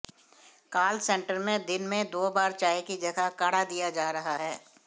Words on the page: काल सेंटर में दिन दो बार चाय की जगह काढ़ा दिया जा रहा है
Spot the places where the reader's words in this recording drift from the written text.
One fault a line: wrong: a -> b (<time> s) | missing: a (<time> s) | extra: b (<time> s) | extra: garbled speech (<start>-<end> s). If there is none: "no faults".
extra: में (1.8 s)